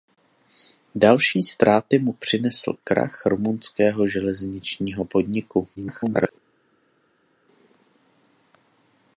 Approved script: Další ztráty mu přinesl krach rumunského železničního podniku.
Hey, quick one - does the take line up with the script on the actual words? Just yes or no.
no